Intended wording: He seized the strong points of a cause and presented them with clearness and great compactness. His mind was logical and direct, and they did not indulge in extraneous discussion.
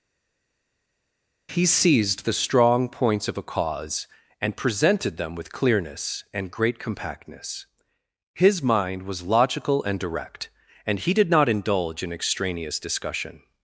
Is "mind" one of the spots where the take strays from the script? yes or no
no